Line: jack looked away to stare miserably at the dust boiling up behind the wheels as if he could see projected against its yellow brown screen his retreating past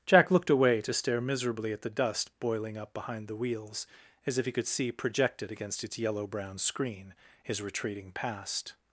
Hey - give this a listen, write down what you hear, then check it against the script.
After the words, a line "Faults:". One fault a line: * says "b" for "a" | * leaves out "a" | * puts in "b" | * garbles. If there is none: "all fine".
jack looked away to stare miserably at the dust boiling up behind the wheels as if he could see projected against its yellow brown screen his retreating past
Faults:
all fine